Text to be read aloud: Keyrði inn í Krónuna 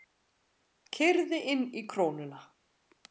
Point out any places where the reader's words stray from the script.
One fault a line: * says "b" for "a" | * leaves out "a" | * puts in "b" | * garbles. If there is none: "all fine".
all fine